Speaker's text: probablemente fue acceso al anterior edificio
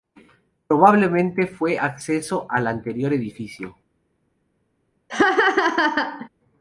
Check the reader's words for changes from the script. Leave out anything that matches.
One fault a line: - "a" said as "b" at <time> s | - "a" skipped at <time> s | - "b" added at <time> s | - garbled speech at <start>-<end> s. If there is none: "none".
none